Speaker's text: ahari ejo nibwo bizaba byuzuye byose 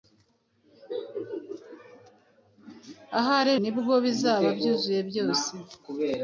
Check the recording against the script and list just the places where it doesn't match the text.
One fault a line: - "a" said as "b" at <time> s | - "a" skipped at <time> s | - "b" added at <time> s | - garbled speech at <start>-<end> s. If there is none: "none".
- "ejo" skipped at 3.5 s